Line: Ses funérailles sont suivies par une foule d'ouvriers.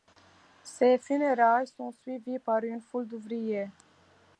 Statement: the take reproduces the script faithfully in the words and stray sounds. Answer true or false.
true